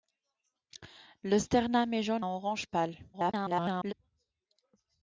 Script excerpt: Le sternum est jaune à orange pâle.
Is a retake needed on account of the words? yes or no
yes